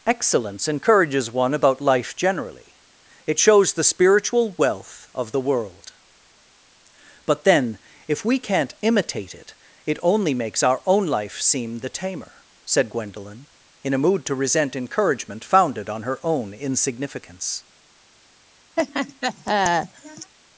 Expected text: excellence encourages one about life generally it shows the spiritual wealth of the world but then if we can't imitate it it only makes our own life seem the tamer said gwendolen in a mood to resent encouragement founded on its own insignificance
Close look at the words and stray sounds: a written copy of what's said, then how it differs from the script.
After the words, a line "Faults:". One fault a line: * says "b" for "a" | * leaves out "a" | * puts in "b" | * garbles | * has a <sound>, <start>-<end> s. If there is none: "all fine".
excellence encourages one about life generally it shows the spiritual wealth of the world but then if we can't imitate it it only makes our own life seem the tamer said gwendolen in a mood to resent encouragement founded on her own insignificance
Faults:
* says "her" for "its"
* has a laugh, 18.8-20.3 s